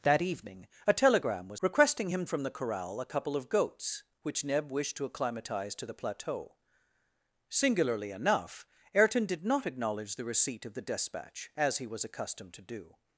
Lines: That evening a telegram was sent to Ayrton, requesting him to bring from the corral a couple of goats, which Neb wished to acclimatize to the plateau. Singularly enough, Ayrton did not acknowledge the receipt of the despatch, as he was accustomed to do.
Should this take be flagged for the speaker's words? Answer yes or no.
yes